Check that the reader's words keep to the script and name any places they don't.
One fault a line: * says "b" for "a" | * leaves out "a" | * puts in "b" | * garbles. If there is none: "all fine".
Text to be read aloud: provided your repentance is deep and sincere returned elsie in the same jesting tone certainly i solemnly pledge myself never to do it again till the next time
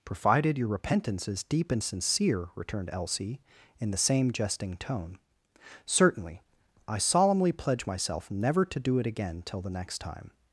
all fine